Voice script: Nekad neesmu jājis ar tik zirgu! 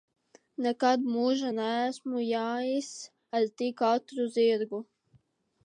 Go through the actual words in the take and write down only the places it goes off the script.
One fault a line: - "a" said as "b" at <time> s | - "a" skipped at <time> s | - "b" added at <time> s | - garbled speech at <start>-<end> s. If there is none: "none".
- "mūžā" added at 1.1 s
- "ātru" added at 3.9 s